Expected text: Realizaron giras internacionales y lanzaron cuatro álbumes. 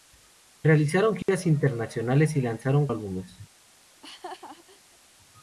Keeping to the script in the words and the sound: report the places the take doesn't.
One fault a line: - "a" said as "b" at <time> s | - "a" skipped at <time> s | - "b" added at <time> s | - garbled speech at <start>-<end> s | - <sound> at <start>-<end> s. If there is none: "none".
- dropout at 1.2-1.3 s
- "cuatro" skipped at 2.9 s
- laugh at 3.9-5.0 s